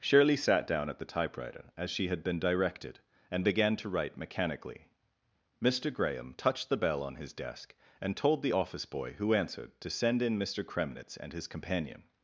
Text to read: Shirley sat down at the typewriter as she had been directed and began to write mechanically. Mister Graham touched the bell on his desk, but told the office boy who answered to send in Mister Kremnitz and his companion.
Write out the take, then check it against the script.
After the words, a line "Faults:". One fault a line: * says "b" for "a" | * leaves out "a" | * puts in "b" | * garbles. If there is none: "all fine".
Shirley sat down at the typewriter as she had been directed and began to write mechanically. Mister Graham touched the bell on his desk, and told the office boy who answered to send in Mister Kremnitz and his companion.
Faults:
* says "and" for "but"